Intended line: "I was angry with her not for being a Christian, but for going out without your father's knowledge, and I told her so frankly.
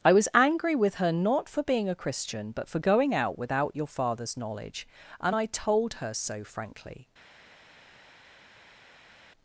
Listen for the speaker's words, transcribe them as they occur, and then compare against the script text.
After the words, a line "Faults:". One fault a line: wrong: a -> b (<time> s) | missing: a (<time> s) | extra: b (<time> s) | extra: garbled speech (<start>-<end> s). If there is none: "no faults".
"I was angry with her not for being a Christian, but for going out without your father's knowledge, and I told her so frankly.
Faults:
no faults